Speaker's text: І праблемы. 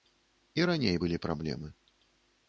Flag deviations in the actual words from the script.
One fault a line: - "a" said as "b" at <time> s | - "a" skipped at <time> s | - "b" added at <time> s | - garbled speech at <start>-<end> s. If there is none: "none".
- "раней былі" added at 0.7 s